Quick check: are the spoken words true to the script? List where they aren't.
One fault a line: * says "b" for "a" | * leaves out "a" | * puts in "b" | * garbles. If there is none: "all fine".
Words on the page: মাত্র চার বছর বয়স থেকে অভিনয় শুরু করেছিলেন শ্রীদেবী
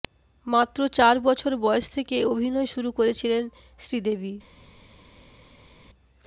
all fine